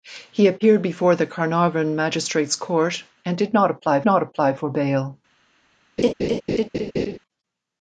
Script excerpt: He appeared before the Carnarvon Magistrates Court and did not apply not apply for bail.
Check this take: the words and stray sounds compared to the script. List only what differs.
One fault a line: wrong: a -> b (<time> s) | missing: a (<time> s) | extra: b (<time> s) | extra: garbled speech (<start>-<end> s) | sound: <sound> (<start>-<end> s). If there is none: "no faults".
sound: laugh (6.0-7.2 s)